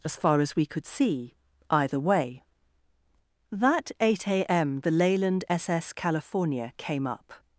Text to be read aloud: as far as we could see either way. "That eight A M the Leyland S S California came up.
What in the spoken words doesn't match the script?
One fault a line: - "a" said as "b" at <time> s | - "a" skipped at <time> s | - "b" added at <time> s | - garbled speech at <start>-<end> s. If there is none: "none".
none